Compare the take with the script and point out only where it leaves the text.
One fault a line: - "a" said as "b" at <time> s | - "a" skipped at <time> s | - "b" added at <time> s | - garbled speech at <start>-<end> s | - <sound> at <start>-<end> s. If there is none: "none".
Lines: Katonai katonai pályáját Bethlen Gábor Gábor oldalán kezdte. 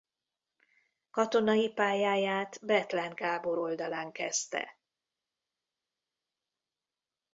- "katonai" skipped at 1.7 s
- "Gábor" skipped at 3.6 s